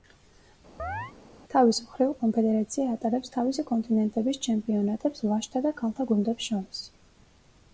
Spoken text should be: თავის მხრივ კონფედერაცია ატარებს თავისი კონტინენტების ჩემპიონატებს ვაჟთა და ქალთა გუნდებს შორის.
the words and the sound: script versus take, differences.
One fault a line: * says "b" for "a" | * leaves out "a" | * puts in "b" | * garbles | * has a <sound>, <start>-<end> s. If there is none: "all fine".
* has a chirp, 0.8-1.1 s